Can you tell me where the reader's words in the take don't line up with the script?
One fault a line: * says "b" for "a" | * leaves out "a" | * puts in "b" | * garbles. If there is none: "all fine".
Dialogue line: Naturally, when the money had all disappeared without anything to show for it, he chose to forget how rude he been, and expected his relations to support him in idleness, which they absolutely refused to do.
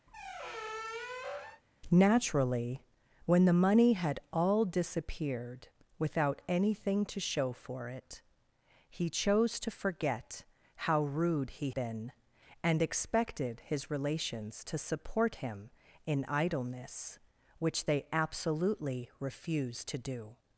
all fine